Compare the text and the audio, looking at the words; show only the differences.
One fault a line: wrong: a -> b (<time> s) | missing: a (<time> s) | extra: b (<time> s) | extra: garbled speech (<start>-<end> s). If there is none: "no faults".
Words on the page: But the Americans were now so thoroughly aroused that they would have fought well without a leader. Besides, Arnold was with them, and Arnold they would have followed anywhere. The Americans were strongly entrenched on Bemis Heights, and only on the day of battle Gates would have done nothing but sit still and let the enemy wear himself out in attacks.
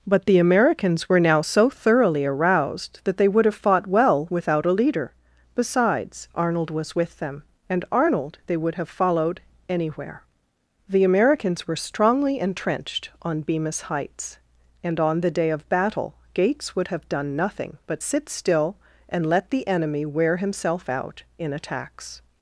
missing: only (15.0 s)